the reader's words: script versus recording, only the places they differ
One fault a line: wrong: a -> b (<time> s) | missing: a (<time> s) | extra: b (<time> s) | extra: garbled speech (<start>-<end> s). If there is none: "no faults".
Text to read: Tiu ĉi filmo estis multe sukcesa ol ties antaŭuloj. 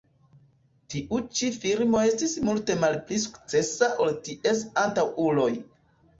extra: malpli (2.9 s)